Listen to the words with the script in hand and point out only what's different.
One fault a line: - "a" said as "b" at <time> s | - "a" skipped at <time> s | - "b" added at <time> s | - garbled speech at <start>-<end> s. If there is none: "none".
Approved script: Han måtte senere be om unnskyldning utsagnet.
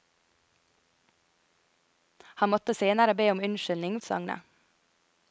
none